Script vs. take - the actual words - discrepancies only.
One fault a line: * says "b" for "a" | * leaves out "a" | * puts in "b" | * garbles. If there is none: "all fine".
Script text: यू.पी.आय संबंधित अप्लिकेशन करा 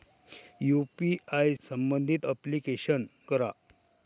all fine